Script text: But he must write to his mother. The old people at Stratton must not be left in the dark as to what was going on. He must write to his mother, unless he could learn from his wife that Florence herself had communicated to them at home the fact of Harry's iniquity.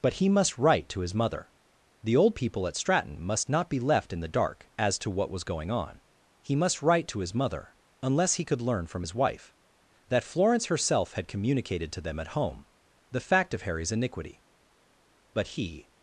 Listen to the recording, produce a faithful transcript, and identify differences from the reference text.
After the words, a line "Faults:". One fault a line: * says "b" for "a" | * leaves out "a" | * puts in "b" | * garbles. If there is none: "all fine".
But he must write to his mother. The old people at Stratton must not be left in the dark as to what was going on. He must write to his mother, unless he could learn from his wife that Florence herself had communicated to them at home the fact of Harry's iniquity. But he
Faults:
* puts in "But he"